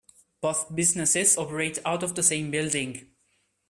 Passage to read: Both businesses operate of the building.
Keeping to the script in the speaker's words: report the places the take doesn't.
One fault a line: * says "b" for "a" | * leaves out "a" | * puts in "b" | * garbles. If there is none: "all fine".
* puts in "out"
* puts in "same"